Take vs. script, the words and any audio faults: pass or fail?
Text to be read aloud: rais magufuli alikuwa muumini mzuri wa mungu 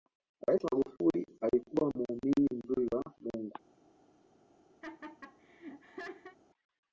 fail